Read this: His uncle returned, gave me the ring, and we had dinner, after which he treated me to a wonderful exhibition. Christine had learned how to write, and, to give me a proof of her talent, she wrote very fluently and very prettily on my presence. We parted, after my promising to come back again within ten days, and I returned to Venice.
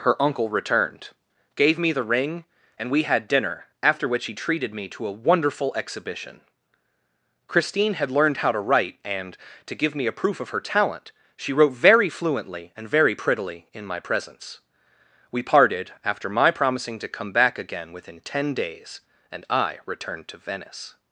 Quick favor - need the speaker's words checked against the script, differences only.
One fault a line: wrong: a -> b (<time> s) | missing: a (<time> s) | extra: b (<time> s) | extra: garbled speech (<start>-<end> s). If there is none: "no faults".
wrong: His -> Her (0.0 s)
wrong: on -> in (13.7 s)